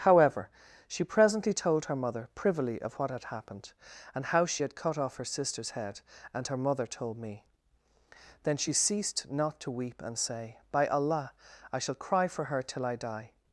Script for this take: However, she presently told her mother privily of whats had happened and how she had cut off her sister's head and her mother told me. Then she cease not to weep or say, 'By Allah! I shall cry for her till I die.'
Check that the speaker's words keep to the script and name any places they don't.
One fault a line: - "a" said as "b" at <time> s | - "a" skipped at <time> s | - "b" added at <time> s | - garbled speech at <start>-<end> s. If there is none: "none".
- "whats" said as "what" at 3.0 s
- "cease" said as "ceased" at 8.7 s
- "or" said as "and" at 10.0 s